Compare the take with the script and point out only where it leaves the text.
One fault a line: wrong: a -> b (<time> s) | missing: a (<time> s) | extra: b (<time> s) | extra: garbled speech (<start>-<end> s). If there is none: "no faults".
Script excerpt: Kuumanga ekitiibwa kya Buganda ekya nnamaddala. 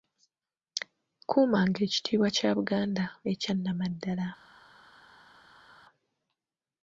no faults